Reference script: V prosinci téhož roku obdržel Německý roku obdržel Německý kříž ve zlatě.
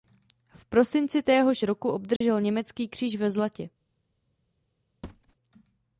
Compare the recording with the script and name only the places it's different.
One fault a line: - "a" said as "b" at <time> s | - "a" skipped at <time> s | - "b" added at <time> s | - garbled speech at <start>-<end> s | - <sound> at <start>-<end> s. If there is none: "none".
- dropout at 2.2-2.2 s
- "roku obdržel Německý" skipped at 2.9 s
- thud at 5.0-5.4 s